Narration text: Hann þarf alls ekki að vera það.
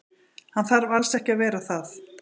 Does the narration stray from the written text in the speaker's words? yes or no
no